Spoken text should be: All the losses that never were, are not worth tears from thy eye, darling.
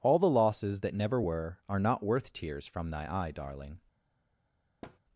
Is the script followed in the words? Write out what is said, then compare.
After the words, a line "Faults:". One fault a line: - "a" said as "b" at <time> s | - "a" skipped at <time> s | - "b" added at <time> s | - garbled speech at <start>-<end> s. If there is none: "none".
All the losses that never were, are not worth tears from thy eye, darling.
Faults:
none